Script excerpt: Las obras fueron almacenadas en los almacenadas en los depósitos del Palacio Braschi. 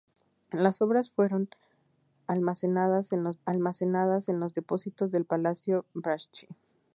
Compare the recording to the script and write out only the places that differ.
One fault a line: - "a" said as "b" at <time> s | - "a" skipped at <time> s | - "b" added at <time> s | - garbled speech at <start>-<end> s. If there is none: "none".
none